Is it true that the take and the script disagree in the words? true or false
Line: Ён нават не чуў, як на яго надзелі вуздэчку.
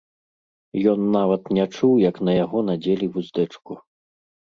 false